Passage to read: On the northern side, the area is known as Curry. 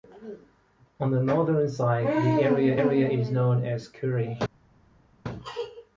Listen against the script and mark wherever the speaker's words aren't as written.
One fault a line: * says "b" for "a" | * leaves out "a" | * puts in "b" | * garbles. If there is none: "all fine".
* puts in "area"